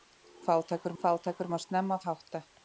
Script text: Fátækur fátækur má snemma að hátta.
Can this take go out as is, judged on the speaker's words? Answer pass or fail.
pass